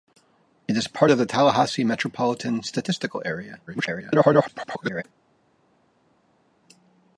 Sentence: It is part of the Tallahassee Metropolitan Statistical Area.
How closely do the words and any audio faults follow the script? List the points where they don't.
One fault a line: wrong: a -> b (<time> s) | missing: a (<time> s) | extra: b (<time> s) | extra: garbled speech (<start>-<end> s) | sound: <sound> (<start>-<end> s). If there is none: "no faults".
extra: garbled speech (3.7-5.0 s)